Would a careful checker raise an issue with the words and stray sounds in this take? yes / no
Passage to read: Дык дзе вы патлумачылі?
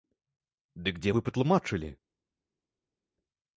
no